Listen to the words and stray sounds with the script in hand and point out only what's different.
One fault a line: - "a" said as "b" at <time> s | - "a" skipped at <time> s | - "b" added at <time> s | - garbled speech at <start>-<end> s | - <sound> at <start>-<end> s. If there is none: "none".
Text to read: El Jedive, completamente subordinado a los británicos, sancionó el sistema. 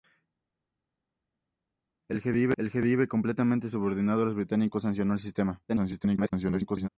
- garbled speech at 5.7-6.9 s